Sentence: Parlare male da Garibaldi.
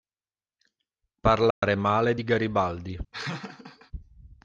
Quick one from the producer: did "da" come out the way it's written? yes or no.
no